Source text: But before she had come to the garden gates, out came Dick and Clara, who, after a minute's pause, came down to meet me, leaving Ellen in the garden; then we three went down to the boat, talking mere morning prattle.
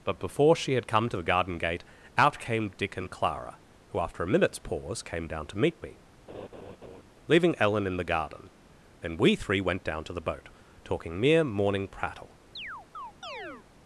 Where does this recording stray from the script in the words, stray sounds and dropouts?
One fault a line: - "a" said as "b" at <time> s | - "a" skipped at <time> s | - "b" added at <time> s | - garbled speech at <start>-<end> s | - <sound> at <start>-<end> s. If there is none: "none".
- "gates" said as "gate" at 1.6 s
- laugh at 6.3-7.0 s
- chirp at 12.6-13.7 s